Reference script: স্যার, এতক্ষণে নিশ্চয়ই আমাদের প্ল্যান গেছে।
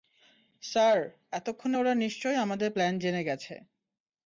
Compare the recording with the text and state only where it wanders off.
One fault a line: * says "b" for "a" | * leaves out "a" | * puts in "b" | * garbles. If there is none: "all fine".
* puts in "ওরা"
* puts in "জেনে"